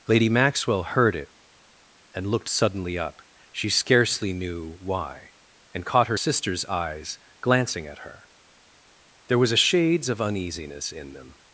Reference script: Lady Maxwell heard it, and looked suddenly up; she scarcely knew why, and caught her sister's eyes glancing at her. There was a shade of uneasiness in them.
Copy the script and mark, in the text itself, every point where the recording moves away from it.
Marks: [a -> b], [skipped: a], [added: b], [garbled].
Lady Maxwell heard it, and looked suddenly up; she scarcely knew why, and caught her sister's eyes glancing at her. There was a [shade -> shades] of uneasiness in them.